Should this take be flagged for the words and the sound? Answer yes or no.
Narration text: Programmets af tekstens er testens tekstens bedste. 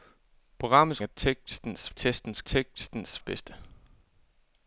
no